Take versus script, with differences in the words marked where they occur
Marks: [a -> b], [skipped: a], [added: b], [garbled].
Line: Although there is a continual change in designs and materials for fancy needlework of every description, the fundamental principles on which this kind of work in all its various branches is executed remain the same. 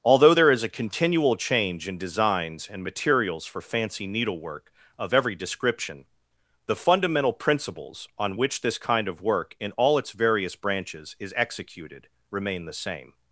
Although there is a continual change in designs and materials for fancy needlework of every description, the fundamental principles on which this kind of work in all its various branches is executed remain the same.